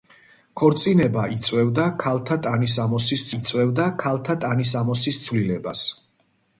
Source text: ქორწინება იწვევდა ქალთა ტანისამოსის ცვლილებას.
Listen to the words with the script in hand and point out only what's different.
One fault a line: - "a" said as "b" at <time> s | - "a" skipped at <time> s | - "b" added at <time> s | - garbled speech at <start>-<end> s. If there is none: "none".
- "იწვევდა ქალთა ტანისამოსის" added at 3.4 s